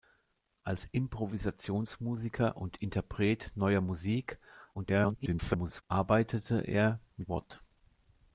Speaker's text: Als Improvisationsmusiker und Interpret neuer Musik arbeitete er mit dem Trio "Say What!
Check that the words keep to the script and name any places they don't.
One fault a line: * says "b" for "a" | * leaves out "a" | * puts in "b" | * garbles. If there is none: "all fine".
* garbles
* leaves out "dem Trio Say"